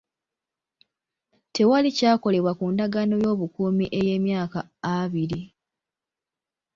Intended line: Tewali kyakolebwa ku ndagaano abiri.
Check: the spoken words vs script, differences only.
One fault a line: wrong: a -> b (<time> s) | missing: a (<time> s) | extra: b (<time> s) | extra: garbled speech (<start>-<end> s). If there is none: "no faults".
extra: y'obukuumi ey'emyaka (3.2 s)